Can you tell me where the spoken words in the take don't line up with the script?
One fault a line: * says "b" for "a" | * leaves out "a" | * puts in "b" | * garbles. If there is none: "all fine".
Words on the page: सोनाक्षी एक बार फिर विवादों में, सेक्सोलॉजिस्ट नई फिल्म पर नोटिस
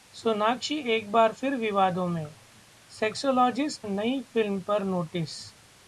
all fine